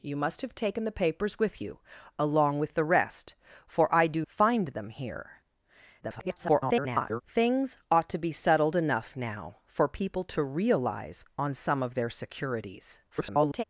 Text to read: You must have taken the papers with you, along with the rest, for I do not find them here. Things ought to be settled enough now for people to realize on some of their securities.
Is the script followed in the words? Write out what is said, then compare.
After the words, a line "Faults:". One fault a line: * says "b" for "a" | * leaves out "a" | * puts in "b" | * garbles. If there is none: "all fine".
You must have taken the papers with you, along with the rest, for I do find them here. [garbled] Things ought to be settled enough now for people to realize on some of their securities. [garbled]
Faults:
* leaves out "not"
* garbles
* garbles